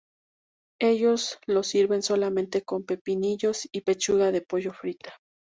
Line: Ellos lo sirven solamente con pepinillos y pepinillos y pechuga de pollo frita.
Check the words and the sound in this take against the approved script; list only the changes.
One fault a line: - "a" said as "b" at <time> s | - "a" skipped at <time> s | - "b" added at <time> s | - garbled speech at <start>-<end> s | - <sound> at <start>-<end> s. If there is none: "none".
- "pepinillos y" skipped at 3.8 s